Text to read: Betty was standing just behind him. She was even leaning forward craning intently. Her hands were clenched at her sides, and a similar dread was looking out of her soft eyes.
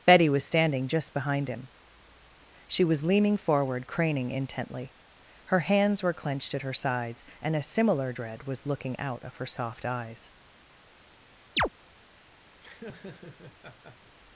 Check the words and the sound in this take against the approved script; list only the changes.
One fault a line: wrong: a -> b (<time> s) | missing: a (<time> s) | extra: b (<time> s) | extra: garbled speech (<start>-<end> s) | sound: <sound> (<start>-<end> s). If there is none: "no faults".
missing: even (3.0 s)
sound: chirp (11.6-11.7 s)
sound: laugh (12.6-14.2 s)